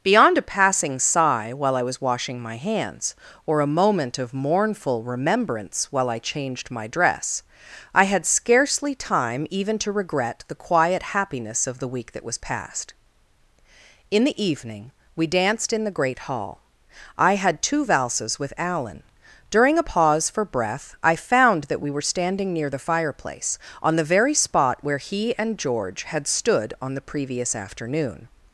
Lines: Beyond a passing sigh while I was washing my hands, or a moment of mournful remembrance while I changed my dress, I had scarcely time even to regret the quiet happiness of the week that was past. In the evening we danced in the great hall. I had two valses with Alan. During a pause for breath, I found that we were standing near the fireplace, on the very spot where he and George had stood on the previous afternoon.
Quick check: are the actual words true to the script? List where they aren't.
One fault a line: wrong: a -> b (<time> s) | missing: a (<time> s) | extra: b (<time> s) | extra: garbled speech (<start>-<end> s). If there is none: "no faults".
no faults